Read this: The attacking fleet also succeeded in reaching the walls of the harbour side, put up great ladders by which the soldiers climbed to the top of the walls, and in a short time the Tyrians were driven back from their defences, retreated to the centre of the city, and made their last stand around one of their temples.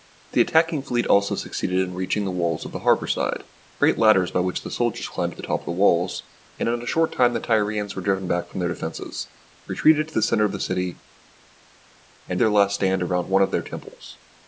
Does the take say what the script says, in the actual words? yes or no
no